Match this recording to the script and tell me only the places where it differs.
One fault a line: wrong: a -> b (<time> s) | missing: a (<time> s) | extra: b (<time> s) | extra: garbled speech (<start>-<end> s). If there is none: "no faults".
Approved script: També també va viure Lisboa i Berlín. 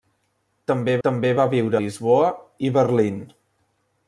no faults